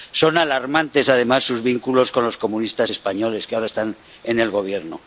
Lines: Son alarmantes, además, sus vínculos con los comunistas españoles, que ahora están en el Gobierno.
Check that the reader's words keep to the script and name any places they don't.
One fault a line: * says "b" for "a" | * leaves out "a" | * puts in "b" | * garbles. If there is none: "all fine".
all fine